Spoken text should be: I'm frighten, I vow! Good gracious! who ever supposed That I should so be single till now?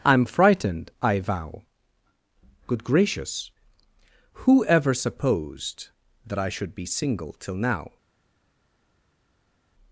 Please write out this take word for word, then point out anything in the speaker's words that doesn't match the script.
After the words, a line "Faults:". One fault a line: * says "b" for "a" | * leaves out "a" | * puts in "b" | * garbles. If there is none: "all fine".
I'm frightened, I vow! Good gracious! who ever supposed That I should be single till now?
Faults:
* says "frightened" for "frighten"
* leaves out "so"